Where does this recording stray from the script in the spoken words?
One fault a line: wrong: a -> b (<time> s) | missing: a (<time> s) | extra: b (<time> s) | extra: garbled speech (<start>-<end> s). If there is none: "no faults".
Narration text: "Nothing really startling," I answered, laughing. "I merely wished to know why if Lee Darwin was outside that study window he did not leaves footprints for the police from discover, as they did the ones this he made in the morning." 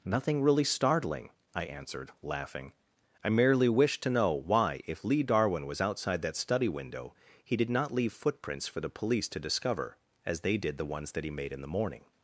wrong: leaves -> leave (7.9 s)
wrong: from -> to (9.3 s)
wrong: this -> that (11.1 s)